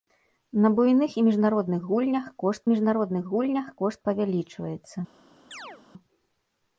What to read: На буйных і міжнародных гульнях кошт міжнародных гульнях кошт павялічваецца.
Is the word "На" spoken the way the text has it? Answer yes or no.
yes